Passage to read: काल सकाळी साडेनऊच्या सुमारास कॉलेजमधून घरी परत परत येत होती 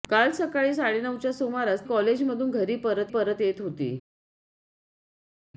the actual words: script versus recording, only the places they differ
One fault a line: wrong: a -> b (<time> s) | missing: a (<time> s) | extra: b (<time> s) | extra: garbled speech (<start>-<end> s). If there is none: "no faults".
no faults